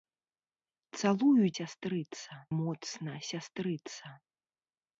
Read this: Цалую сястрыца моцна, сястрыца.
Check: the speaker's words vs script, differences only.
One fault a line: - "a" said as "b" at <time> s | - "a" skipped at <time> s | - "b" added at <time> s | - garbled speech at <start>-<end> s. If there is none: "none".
none